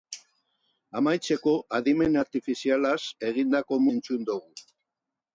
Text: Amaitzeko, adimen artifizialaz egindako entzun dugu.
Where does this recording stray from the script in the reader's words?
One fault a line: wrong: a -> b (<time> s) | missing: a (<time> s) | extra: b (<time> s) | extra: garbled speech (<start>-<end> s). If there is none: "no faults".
no faults